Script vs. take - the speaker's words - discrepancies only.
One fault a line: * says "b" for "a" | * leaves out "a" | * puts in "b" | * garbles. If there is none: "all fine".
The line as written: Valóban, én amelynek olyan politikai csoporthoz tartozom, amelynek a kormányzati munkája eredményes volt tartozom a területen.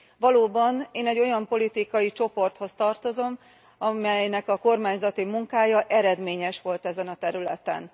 * says "egy" for "amelynek"
* says "ezen" for "tartozom"